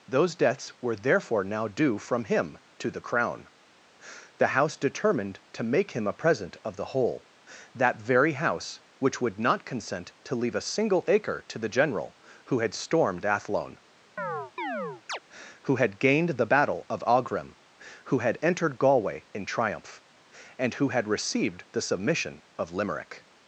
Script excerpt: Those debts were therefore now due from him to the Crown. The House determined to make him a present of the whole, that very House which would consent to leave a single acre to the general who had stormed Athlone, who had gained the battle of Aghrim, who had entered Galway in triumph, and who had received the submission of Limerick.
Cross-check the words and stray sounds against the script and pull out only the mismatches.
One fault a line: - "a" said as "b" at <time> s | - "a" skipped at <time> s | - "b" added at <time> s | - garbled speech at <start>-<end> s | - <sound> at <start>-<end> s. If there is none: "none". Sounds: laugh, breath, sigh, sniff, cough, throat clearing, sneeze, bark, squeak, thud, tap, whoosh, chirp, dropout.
- "not" added at 9.4 s
- chirp at 14.2-15.2 s